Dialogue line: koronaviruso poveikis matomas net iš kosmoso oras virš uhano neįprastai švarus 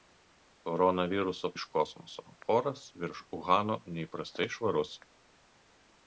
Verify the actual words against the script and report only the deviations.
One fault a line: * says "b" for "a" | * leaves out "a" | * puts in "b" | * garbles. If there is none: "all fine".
* leaves out "poveikis matomas net"